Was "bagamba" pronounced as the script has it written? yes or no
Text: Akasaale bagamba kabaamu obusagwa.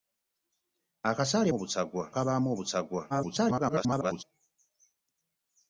no